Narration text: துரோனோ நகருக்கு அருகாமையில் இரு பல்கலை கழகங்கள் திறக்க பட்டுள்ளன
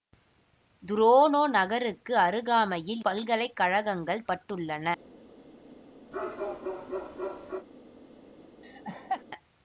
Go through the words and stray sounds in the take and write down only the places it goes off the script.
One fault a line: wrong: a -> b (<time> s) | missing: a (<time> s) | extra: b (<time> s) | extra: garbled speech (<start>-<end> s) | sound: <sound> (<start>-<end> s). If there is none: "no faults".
missing: இரு (3.0 s)
missing: திறக்க (4.3 s)
sound: bark (6.1-7.7 s)
sound: laugh (8.6-9.2 s)